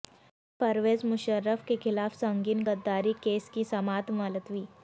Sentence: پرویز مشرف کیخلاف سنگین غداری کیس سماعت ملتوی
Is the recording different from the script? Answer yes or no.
yes